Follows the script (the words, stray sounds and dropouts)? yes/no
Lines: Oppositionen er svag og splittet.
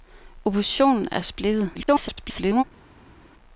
no